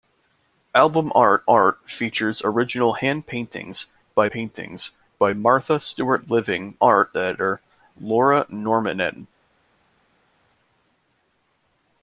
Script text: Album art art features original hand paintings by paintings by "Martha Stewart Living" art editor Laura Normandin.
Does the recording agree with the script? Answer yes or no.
yes